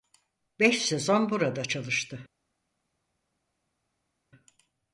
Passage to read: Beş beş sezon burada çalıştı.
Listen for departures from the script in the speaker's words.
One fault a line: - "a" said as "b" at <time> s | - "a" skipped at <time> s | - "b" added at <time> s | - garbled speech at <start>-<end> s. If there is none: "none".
- "beş" skipped at 0.8 s